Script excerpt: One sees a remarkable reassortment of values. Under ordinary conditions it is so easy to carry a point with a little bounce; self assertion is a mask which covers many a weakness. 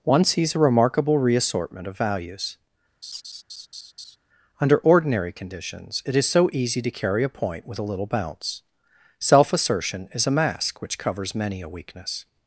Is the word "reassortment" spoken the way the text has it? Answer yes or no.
yes